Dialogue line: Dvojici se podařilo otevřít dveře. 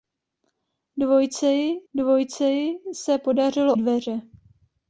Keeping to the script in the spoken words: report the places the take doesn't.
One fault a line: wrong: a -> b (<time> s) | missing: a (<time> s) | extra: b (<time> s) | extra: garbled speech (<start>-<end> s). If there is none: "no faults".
extra: dvojici (1.9 s)
missing: otevřít (3.7 s)